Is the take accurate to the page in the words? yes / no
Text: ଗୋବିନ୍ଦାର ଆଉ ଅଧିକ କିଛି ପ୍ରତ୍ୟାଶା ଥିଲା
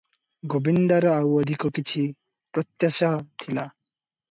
yes